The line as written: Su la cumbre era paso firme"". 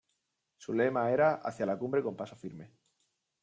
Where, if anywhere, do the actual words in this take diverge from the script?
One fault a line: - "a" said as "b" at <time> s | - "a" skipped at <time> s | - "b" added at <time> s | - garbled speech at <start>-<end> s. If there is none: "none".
- "lema era Hacia" added at 0.7 s
- "era" said as "con" at 2.0 s